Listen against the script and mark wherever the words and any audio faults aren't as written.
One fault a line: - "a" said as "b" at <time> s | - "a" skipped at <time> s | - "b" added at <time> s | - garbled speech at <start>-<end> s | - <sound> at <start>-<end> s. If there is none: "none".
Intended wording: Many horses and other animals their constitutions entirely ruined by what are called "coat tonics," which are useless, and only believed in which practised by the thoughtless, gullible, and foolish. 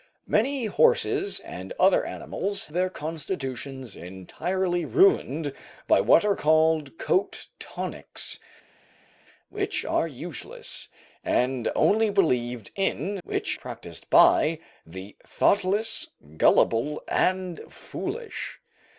none